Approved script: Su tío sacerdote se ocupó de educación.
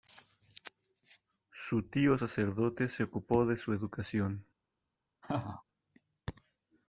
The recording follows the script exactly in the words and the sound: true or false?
false